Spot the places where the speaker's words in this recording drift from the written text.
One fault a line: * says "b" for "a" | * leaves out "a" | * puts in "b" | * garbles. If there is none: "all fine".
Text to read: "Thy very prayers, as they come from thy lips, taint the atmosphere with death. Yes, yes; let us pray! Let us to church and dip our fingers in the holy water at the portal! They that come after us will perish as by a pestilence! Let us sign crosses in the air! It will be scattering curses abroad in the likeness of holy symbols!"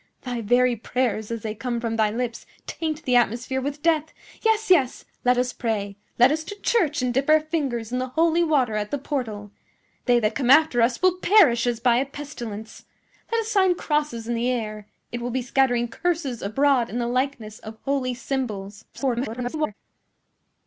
* garbles